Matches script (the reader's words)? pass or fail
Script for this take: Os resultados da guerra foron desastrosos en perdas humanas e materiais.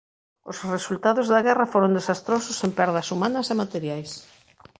pass